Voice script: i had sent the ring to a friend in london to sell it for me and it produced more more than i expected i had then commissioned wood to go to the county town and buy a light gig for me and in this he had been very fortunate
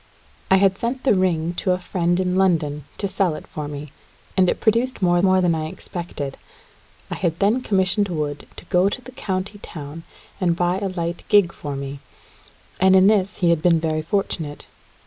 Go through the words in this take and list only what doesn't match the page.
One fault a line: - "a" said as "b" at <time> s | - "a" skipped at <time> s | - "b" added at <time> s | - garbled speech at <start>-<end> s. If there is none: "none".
none